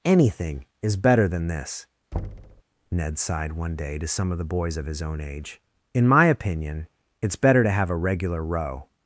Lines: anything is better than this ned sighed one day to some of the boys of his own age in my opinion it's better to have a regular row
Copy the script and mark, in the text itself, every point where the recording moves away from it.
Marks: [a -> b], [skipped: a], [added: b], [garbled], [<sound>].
anything is better than this [thud] ned sighed one day to some of the boys of his own age in my opinion it's better to have a regular row